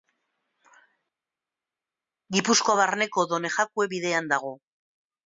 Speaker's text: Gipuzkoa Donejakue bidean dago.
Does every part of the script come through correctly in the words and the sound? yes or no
no